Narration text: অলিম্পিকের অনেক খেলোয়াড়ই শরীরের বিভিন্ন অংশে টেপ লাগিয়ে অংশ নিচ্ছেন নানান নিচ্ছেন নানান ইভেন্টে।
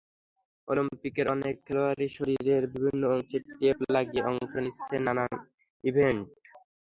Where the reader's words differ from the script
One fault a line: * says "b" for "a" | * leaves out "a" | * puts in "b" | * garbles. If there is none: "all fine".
* leaves out "নিচ্ছেন নানান"